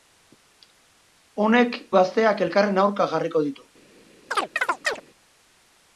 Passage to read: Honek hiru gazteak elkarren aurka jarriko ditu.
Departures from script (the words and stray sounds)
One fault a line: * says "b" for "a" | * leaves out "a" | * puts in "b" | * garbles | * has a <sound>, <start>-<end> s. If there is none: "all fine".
* leaves out "hiru"
* has a chirp, 4.3-5.0 s